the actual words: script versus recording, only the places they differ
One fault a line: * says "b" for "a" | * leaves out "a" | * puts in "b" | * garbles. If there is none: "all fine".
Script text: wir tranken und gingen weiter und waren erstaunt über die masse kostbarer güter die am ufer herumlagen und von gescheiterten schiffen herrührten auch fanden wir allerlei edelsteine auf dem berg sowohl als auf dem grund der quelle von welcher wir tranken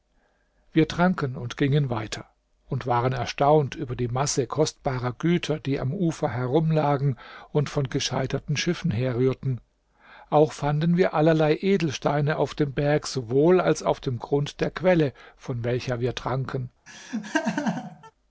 all fine